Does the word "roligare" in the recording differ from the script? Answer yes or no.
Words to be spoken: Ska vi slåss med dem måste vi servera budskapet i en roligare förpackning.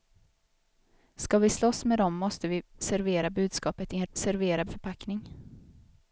yes